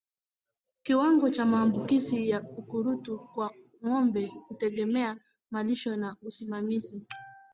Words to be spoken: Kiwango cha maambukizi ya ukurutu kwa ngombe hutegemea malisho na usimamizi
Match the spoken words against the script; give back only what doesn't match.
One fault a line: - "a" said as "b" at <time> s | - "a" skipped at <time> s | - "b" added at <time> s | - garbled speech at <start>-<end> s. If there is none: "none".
none